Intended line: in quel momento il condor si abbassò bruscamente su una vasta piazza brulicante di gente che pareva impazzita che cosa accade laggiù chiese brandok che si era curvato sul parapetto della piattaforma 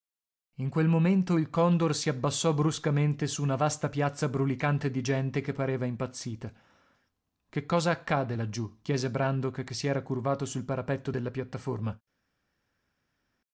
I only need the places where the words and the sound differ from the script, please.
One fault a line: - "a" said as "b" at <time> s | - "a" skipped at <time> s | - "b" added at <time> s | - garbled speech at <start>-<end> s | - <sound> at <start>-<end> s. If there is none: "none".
none